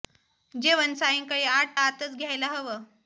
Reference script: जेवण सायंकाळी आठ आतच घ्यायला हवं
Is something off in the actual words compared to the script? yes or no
no